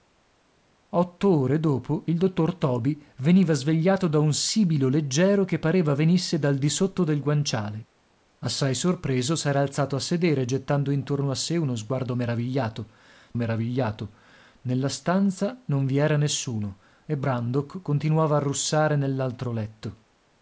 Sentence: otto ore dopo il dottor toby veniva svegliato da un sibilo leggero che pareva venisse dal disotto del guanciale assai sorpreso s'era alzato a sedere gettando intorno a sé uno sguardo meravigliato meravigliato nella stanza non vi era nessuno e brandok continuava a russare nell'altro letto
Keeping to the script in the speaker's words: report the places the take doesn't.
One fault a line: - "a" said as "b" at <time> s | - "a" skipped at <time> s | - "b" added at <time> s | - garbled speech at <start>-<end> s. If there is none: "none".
none